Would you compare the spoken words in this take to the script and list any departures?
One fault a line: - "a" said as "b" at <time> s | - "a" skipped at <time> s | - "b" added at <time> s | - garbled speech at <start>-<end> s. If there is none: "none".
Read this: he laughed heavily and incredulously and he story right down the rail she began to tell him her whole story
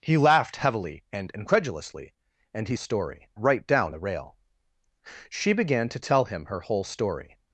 none